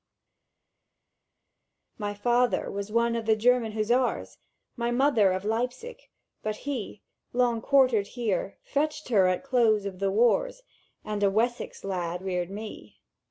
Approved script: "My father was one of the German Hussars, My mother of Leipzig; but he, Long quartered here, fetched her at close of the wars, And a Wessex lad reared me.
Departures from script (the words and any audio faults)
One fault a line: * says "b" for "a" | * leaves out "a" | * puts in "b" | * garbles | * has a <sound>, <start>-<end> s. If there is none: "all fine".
all fine